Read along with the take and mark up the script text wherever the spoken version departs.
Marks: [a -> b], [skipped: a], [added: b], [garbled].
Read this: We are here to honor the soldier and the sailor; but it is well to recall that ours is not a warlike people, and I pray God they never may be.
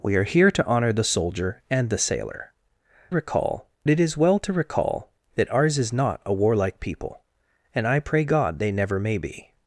We are here to honor the soldier and the sailor; [but -> recall] it is well to recall that ours is not a warlike people, and I pray God they never may be.